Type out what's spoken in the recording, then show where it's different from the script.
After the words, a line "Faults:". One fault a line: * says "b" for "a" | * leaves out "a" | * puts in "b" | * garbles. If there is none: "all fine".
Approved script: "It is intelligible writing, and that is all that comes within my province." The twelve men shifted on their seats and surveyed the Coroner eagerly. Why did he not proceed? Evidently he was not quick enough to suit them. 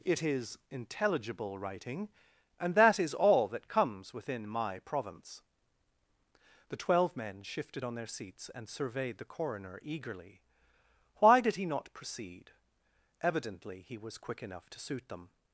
"It is intelligible writing, and that is all that comes within my province." The twelve men shifted on their seats and surveyed the Coroner eagerly. Why did he not proceed? Evidently he was quick enough to suit them.
Faults:
* leaves out "not"